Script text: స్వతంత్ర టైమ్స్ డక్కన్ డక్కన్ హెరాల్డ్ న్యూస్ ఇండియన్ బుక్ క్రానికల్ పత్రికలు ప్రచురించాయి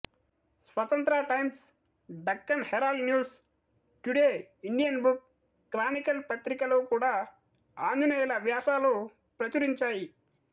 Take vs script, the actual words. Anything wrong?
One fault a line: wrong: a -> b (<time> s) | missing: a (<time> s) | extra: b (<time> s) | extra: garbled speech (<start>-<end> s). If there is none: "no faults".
missing: డక్కన్ (2.6 s)
extra: టుడే (4.0 s)
extra: కూడా ఆంజనేయులు వ్యాసాలు (6.9 s)